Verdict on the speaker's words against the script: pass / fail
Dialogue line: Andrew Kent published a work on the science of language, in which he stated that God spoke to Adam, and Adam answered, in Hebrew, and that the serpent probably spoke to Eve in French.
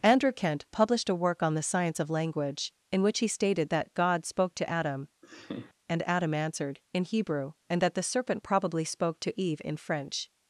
pass